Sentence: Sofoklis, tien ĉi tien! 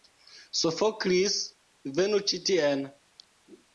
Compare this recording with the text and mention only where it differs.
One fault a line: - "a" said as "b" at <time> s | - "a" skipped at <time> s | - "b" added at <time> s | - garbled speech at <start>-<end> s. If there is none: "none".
- "tien" said as "venu" at 2.0 s